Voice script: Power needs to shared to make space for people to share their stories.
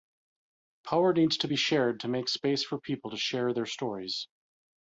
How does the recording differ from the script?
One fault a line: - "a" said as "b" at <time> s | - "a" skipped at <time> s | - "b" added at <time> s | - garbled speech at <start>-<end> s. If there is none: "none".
- "be" added at 1.5 s